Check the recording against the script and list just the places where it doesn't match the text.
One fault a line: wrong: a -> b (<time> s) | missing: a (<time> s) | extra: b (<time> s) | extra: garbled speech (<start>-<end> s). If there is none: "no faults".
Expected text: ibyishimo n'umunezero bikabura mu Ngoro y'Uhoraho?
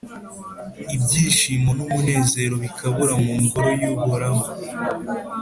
no faults